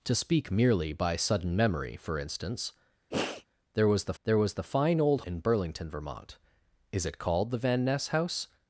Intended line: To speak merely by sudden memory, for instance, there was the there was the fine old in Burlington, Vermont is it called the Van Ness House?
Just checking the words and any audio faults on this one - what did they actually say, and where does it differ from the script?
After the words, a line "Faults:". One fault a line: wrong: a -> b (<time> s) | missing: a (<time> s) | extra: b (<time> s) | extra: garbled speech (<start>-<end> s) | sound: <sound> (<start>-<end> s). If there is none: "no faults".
To speak merely by sudden memory, for instance, there was the there was the fine old in Burlington, Vermont is it called the Van Ness House?
Faults:
sound: sniff (3.1-3.5 s)